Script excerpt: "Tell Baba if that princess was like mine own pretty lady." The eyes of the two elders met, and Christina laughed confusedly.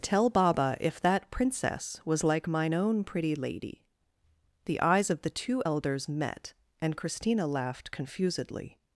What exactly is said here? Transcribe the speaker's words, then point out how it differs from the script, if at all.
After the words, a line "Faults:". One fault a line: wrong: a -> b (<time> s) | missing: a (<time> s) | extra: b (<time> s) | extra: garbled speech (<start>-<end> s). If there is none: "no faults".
"Tell Baba if that princess was like mine own pretty lady." The eyes of the two elders met, and Christina laughed confusedly.
Faults:
no faults